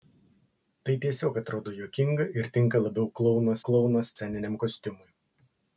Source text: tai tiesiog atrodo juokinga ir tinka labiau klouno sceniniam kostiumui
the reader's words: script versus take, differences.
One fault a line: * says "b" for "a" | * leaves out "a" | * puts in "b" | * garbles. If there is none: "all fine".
* puts in "klouno"